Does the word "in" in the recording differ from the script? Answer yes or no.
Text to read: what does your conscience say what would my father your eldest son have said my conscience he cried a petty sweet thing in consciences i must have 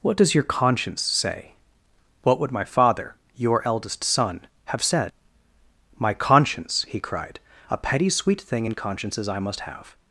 no